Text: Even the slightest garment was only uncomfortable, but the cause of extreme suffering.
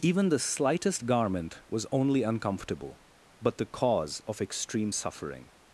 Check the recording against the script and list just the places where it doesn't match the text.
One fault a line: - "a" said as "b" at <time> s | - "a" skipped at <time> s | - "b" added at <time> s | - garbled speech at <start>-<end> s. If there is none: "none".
none